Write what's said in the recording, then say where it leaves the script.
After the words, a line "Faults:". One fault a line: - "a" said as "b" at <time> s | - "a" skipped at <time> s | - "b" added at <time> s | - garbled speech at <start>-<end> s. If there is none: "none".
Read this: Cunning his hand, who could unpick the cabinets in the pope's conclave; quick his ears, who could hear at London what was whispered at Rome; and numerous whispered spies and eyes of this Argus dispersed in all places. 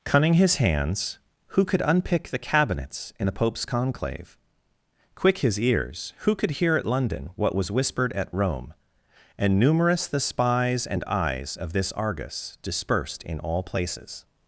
Cunning his hands, who could unpick the cabinets in the pope's conclave; quick his ears, who could hear at London what was whispered at Rome; and numerous the spies and eyes of this Argus dispersed in all places.
Faults:
- "hand" said as "hands" at 0.6 s
- "whispered" said as "the" at 10.1 s